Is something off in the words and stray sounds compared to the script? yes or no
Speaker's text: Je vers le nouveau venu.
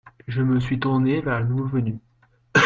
yes